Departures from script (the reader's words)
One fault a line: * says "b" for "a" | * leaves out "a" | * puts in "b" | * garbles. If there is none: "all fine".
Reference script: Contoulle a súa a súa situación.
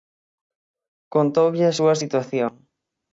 * leaves out "a súa"